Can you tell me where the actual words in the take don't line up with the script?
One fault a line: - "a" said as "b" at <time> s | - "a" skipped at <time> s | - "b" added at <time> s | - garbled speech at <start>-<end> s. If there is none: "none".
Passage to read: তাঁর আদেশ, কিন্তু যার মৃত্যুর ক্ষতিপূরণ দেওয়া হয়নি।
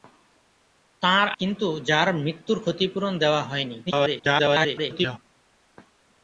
- "আদেশ" skipped at 1.3 s
- garbled speech at 3.9-5.2 s